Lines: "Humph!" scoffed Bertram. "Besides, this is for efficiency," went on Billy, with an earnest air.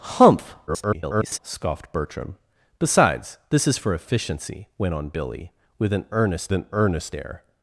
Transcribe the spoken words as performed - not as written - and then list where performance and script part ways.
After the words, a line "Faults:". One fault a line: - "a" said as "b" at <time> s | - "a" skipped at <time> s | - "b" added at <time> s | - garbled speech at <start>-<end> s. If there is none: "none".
"Humph!" [garbled] scoffed Bertram. "Besides, this is for efficiency," went on Billy, with an earnest an earnest air.
Faults:
- garbled speech at 0.7-1.4 s
- "an earnest" added at 6.5 s